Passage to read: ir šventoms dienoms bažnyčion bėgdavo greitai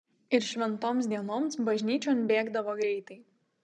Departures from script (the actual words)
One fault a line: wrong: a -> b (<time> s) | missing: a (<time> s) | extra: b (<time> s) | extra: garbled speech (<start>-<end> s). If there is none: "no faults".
no faults